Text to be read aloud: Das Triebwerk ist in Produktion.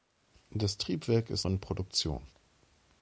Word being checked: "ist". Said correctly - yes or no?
yes